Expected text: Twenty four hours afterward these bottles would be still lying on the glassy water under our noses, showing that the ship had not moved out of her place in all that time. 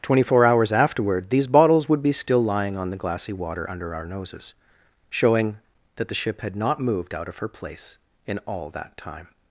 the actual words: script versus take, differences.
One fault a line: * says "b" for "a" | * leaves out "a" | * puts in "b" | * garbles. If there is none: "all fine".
all fine